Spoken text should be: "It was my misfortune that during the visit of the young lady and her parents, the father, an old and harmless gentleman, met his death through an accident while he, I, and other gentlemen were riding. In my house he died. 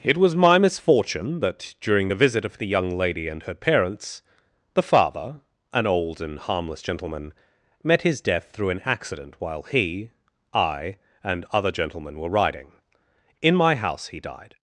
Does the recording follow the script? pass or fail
pass